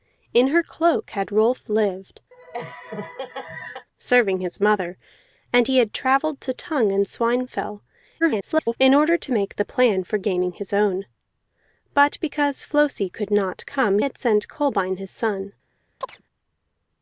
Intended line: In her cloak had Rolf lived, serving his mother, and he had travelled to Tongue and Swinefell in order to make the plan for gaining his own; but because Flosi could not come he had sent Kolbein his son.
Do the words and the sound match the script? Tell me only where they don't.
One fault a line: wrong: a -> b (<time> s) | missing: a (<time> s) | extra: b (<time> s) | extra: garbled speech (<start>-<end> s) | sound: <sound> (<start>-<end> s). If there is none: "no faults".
sound: laugh (2.3-3.9 s)
extra: garbled speech (8.2-8.8 s)
missing: he (14.0 s)
sound: chirp (16.0-16.2 s)